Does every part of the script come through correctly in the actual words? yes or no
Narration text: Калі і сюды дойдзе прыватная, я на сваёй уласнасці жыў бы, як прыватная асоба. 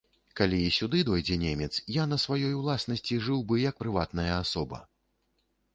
no